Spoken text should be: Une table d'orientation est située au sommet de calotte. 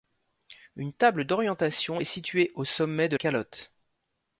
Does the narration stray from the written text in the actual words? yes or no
no